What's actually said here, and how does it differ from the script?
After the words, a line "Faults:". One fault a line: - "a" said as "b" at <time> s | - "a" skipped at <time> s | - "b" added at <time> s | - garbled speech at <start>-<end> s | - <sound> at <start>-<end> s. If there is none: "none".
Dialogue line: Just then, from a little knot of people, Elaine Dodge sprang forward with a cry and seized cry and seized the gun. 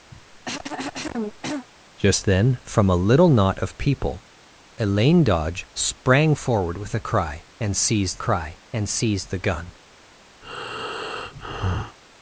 Just then, from a little knot of people, Elaine Dodge sprang forward with a cry and seized cry and seized the gun.
Faults:
- cough at 0.1-1.7 s
- breath at 10.4-12.0 s